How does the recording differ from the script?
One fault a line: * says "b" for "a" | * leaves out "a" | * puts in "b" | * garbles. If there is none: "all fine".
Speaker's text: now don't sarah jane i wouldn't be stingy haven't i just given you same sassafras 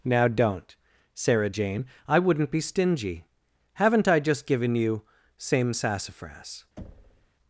all fine